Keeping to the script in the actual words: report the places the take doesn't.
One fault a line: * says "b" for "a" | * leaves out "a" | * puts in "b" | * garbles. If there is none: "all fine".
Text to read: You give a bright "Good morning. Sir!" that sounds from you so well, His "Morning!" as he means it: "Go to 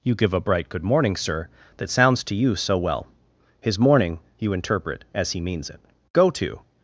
* says "to" for "from"
* puts in "you interpret"